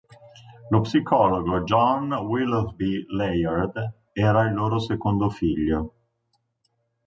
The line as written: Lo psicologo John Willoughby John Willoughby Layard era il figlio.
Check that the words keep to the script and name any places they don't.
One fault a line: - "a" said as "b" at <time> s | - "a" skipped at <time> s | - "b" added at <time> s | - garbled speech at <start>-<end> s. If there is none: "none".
- "John Willoughby" skipped at 3.0 s
- "loro secondo" added at 4.5 s